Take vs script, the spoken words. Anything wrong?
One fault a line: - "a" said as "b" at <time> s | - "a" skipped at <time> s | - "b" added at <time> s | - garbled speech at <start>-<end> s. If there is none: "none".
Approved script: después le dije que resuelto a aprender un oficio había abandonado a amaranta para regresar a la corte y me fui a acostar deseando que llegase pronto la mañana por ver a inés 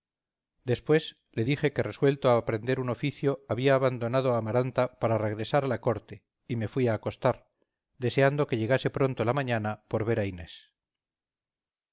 none